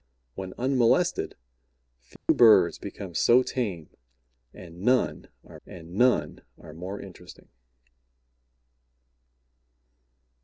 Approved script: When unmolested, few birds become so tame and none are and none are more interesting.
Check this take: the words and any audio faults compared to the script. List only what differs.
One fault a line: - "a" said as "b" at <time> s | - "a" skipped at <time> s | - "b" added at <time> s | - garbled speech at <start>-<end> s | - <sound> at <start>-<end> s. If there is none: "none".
- dropout at 2.2-2.3 s